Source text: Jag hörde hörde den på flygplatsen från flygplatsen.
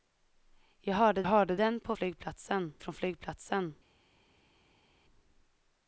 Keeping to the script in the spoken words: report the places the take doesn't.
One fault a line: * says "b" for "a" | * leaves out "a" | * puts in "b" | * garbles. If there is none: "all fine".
all fine